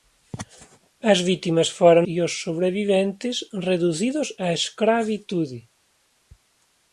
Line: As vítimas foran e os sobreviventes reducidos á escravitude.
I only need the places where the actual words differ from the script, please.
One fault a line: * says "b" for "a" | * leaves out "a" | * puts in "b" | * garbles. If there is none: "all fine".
all fine